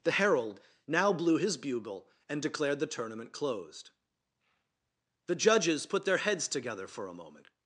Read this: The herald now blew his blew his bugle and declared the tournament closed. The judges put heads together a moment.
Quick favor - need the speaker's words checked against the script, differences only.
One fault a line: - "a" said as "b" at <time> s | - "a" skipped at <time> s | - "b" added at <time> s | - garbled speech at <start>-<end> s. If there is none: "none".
- "blew his" skipped at 1.6 s
- "their" added at 6.0 s
- "for" added at 6.9 s